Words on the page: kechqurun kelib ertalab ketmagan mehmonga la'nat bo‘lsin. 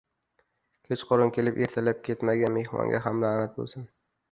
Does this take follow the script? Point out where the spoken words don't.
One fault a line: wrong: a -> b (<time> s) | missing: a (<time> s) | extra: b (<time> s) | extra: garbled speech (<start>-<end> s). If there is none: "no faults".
extra: ham (3.1 s)